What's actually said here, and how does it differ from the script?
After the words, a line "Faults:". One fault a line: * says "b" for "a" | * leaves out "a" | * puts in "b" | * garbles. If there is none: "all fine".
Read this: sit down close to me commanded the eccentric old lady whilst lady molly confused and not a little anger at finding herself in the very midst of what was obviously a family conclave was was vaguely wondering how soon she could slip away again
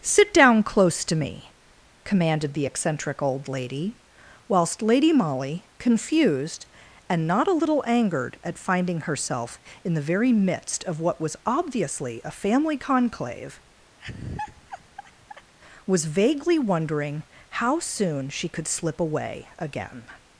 sit down close to me commanded the eccentric old lady whilst lady molly confused and not a little angered at finding herself in the very midst of what was obviously a family conclave was vaguely wondering how soon she could slip away again
Faults:
* says "angered" for "anger"
* leaves out "was"